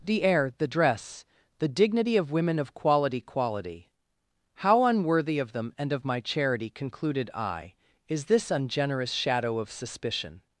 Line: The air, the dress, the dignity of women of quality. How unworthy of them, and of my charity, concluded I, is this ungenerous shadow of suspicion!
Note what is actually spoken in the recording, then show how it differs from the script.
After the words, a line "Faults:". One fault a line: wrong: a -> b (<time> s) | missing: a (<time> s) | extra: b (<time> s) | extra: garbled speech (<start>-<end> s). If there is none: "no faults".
The air, the dress, the dignity of women of quality quality. How unworthy of them, and of my charity, concluded I, is this ungenerous shadow of suspicion!
Faults:
extra: quality (3.2 s)